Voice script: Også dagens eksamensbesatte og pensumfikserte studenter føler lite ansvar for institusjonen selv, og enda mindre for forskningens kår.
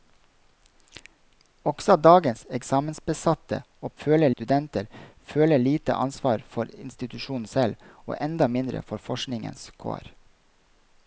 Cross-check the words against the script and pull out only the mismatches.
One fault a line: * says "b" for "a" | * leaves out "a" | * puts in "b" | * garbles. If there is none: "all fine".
* says "føler" for "pensumfikserte"